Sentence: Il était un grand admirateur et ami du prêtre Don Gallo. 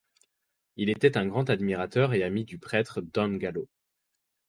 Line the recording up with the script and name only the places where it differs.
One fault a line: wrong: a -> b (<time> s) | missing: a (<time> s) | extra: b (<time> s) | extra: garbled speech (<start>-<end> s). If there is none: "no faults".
no faults